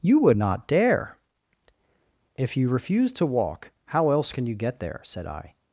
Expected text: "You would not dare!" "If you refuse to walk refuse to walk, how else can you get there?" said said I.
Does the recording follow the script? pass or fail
fail